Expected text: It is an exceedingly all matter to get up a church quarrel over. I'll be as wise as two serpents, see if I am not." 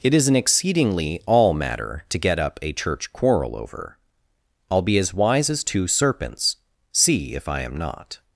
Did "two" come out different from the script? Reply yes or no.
no